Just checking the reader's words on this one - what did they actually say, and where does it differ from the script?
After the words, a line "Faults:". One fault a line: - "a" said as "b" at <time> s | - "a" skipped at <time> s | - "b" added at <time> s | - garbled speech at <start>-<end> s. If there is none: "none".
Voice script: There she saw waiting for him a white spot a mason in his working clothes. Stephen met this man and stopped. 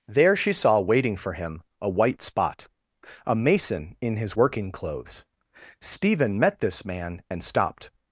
There she saw waiting for him a white spot a mason in his working clothes. Stephen met this man and stopped.
Faults:
none